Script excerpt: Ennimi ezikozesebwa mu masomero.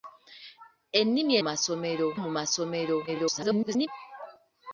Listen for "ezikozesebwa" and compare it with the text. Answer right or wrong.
wrong